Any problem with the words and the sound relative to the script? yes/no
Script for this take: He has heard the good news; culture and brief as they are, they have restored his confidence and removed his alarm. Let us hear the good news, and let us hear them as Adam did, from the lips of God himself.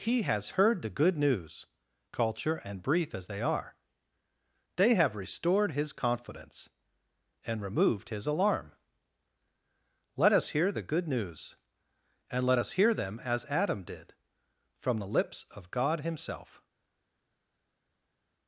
no